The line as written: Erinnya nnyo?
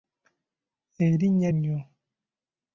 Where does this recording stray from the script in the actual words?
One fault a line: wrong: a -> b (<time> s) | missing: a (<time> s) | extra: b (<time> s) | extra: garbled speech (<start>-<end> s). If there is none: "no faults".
no faults